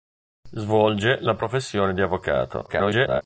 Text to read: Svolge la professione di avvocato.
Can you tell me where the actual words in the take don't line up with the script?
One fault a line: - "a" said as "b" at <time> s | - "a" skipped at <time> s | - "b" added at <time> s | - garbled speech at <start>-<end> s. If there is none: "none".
- garbled speech at 2.7-3.2 s